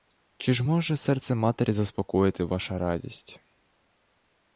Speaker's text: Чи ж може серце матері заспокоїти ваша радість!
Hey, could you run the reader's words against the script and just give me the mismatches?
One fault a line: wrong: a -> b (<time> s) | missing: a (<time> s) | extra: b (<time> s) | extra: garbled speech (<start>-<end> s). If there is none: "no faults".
no faults